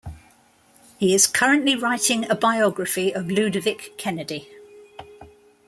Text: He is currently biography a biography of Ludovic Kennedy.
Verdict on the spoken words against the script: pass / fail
fail